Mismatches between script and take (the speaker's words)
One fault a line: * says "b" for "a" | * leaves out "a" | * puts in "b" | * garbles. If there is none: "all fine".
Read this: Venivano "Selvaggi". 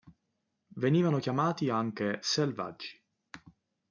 * puts in "chiamati anche"